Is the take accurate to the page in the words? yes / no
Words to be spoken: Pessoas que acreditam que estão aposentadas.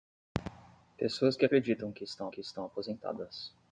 no